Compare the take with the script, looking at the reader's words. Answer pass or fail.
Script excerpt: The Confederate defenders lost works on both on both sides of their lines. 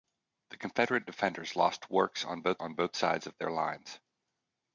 pass